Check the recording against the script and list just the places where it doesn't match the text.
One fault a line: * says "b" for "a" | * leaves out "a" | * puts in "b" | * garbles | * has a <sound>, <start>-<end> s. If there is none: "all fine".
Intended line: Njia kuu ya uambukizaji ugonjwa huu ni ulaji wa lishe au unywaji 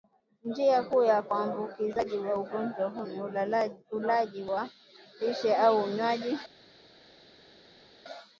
* puts in "wa"